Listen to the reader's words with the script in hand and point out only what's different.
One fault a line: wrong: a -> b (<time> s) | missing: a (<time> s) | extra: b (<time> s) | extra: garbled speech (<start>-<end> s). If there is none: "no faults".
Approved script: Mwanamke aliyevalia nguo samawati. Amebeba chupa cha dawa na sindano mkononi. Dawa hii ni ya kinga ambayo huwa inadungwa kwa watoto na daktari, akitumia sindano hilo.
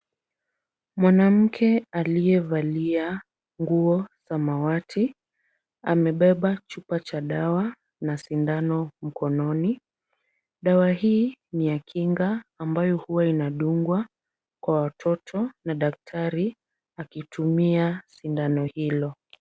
no faults